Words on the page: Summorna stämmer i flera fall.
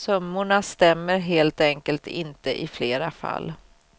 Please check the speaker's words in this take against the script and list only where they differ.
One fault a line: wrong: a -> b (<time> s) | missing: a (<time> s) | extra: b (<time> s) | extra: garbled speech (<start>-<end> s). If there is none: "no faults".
extra: helt enkelt inte (1.2 s)